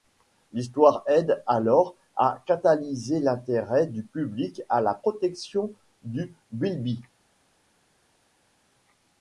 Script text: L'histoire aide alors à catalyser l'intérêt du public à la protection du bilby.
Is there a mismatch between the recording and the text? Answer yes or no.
no